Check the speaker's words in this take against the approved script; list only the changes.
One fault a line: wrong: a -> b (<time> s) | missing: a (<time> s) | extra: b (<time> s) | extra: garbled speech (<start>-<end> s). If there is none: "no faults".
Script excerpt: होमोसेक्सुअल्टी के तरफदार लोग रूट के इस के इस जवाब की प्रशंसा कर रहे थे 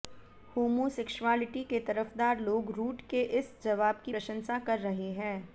missing: के इस (3.5 s)
wrong: थे -> हैं (5.1 s)